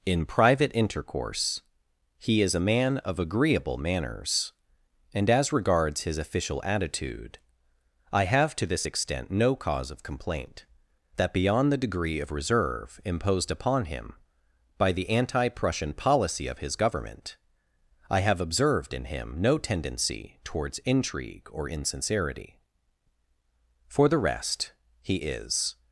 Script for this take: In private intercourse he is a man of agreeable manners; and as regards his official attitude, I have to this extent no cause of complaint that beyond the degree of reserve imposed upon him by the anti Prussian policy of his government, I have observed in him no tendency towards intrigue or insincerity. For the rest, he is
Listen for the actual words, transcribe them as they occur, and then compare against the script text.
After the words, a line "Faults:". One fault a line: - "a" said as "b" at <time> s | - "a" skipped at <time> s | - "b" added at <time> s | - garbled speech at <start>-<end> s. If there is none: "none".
In private intercourse he is a man of agreeable manners; and as regards his official attitude, I have to this extent no cause of complaint that beyond the degree of reserve imposed upon him by the anti Prussian policy of his government, I have observed in him no tendency towards intrigue or insincerity. For the rest, he is
Faults:
none